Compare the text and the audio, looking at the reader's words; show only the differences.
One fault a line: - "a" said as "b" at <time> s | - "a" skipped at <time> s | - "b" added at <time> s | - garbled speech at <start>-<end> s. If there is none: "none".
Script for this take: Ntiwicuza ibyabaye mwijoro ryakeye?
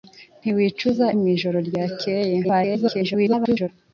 - "ibyabaye" skipped at 1.1 s
- garbled speech at 2.4-3.7 s